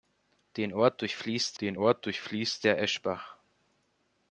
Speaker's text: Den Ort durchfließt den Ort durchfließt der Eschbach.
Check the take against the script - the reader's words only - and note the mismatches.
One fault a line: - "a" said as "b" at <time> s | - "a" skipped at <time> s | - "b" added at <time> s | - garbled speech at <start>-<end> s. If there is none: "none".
none